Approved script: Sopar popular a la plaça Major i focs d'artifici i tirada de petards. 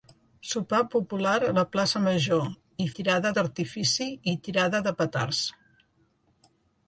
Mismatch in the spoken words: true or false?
true